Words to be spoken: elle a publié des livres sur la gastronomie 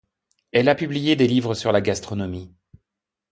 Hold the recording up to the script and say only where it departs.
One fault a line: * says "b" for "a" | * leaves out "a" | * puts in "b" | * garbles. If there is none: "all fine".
all fine